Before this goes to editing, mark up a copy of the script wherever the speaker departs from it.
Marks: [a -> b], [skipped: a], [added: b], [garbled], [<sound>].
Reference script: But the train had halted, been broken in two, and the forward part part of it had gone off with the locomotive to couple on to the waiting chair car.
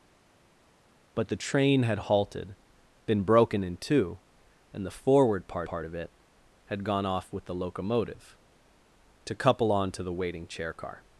But the train had halted, been broken in two, and the forward part part of it had gone off with the locomotive to couple on to the waiting chair car.